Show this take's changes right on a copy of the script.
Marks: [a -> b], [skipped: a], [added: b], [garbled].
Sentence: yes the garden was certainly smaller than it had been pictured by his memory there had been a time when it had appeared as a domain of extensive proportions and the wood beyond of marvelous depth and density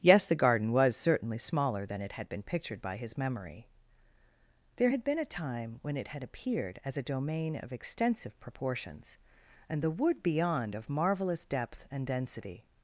yes the garden was certainly smaller than it had been pictured by his memory there had been a time when it had appeared as a domain of extensive proportions and the wood beyond of marvelous depth and density